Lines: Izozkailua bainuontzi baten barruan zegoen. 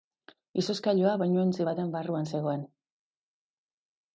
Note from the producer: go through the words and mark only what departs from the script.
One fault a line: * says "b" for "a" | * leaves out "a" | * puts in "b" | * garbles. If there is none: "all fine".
all fine